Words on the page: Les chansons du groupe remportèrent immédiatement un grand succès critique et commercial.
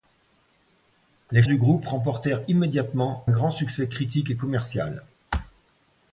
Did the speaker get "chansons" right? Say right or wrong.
wrong